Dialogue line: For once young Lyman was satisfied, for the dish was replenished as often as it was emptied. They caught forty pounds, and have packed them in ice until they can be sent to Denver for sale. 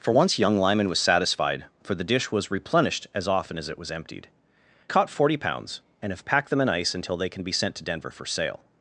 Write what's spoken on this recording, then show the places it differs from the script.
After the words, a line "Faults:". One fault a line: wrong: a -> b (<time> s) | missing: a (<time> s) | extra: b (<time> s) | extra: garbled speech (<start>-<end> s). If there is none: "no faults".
For once young Lyman was satisfied, for the dish was replenished as often as it was emptied. Caught forty pounds, and have packed them in ice until they can be sent to Denver for sale.
Faults:
missing: They (4.3 s)